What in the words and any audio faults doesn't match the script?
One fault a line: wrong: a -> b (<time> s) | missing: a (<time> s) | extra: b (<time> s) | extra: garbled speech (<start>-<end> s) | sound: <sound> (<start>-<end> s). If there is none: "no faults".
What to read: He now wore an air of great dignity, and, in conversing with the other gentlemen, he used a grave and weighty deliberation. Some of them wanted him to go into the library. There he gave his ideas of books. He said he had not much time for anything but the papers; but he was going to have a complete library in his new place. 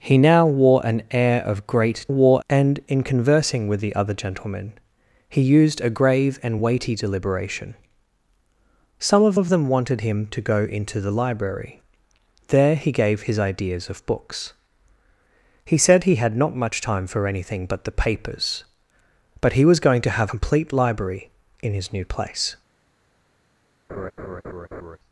wrong: dignity -> wore (2.1 s)
extra: of (9.3 s)
missing: a (20.3 s)
sound: laugh (23.9-25.0 s)